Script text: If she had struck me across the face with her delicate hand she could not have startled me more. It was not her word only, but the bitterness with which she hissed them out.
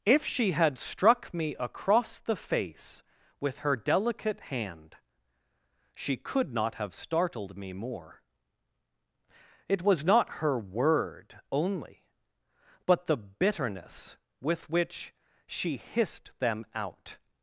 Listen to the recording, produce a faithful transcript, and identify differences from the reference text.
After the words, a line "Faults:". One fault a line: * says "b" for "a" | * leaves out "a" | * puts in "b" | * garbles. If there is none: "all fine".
If she had struck me across the face with her delicate hand she could not have startled me more. It was not her word only, but the bitterness with which she hissed them out.
Faults:
all fine